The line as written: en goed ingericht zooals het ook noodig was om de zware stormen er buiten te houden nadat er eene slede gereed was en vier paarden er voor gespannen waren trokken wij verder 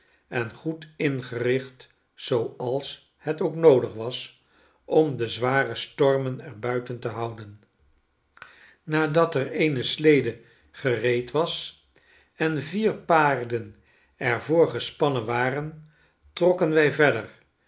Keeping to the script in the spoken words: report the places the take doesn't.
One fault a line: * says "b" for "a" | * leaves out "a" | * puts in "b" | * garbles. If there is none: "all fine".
all fine